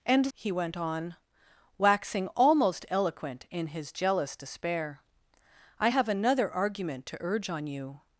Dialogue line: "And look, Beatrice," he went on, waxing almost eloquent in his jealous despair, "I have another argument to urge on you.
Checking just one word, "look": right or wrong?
wrong